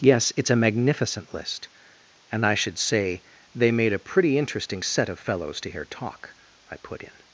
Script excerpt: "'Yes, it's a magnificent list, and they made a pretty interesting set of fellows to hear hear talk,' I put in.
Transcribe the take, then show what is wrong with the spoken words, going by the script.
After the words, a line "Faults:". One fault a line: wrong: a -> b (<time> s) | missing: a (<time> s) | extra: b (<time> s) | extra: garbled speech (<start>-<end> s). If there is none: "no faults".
"'Yes, it's a magnificent list, and I should say they made a pretty interesting set of fellows to hear talk,' I put in.
Faults:
extra: I should say (2.4 s)
missing: hear (5.9 s)